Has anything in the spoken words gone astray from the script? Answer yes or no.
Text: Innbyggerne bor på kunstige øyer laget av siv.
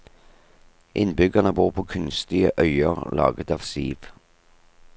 no